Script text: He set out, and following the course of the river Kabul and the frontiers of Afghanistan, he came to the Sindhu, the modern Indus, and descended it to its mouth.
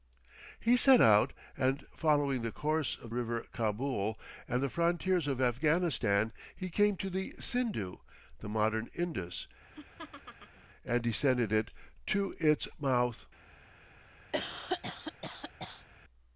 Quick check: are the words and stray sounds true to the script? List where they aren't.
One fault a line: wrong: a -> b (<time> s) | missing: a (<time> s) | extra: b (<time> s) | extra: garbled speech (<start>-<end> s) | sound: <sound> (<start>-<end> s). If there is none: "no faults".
missing: the (3.1 s)
sound: laugh (9.7-10.7 s)
sound: cough (14.3-15.9 s)